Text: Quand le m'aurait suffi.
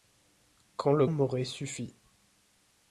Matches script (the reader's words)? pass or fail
pass